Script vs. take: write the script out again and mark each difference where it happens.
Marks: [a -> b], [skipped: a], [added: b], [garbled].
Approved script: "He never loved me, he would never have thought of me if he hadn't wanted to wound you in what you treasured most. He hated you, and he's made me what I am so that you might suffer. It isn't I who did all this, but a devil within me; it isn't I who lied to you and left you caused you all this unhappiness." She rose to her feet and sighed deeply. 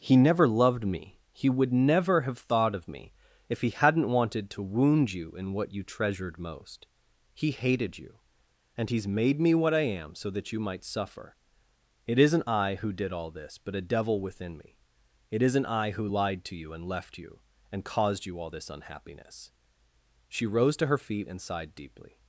"He never loved me, he would never have thought of me if he hadn't wanted to wound you in what you treasured most. He hated you, and he's made me what I am so that you might suffer. It isn't I who did all this, but a devil within me; it isn't I who lied to you and left you [added: and] caused you all this unhappiness." She rose to her feet and sighed deeply.